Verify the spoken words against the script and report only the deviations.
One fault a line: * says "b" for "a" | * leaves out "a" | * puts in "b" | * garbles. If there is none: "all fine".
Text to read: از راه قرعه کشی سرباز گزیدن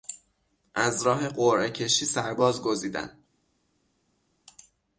all fine